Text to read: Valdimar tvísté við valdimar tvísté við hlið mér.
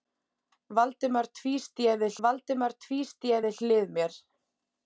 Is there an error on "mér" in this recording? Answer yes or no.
no